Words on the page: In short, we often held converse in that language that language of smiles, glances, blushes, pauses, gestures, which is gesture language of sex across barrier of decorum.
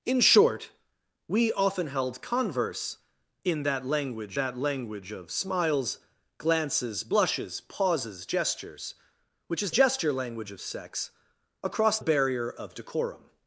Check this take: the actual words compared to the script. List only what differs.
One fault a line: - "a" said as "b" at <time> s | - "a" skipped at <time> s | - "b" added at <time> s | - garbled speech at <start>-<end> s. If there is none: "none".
none